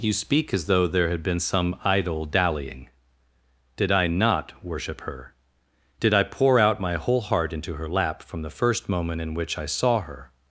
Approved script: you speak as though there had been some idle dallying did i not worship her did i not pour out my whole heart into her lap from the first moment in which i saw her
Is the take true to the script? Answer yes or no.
no